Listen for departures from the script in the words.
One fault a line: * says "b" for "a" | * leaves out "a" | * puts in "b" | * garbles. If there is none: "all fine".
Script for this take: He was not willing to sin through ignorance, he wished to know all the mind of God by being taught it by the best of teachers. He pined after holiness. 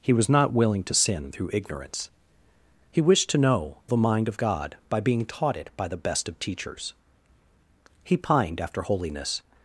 * leaves out "all"